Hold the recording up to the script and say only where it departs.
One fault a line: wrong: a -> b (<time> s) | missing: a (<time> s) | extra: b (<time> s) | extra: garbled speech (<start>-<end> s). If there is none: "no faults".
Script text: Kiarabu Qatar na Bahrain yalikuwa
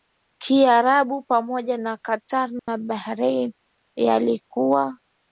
extra: pamoja na (1.2 s)